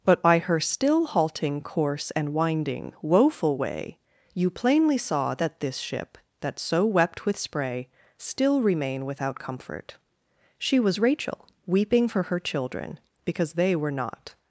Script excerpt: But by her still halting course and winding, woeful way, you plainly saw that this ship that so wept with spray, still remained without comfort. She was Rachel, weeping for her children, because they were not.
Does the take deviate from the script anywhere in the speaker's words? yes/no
yes